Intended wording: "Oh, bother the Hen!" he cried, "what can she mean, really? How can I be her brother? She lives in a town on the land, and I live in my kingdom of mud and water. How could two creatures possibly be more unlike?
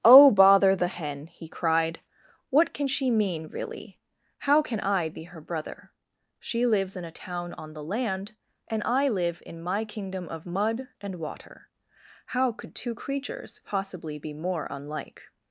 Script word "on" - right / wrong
right